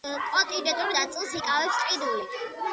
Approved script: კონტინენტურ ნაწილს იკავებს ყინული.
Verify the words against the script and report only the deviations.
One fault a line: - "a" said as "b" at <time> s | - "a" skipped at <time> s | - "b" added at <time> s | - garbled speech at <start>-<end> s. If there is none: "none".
none